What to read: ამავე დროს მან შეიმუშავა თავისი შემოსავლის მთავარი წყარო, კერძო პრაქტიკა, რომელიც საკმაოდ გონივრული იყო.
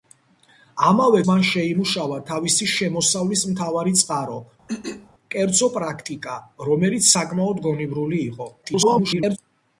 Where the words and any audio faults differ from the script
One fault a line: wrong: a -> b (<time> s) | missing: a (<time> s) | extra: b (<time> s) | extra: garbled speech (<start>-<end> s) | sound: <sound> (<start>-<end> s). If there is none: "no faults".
missing: დროს (1.2 s)
sound: throat clearing (4.7-5.1 s)
extra: garbled speech (8.6-9.4 s)